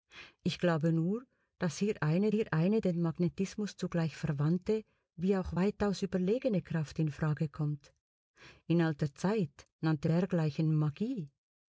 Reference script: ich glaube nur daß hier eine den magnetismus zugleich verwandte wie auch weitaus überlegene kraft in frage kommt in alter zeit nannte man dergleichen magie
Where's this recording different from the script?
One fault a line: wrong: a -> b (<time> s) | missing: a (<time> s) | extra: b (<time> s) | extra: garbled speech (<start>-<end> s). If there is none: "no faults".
extra: hier eine (2.3 s)
missing: man (10.1 s)